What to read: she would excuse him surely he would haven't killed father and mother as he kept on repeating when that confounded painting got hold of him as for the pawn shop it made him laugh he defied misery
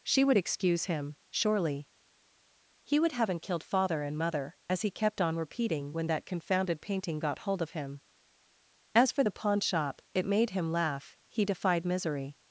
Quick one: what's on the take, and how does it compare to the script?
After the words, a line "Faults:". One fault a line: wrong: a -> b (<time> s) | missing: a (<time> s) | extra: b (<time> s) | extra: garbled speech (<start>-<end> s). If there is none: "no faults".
she would excuse him surely he would haven't killed father and mother as he kept on repeating when that confounded painting got hold of him as for the pawn shop it made him laugh he defied misery
Faults:
no faults